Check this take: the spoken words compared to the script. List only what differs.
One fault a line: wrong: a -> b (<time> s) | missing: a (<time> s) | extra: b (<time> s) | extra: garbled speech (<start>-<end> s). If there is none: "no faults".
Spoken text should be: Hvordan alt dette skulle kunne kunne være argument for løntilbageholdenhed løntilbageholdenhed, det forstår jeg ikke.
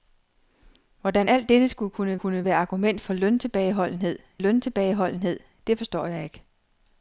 no faults